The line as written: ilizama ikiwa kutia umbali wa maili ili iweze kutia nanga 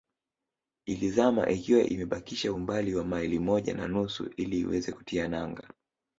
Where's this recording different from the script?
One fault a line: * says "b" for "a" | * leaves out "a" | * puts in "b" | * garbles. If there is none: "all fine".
* says "imebakisha" for "kutia"
* puts in "moja na nusu"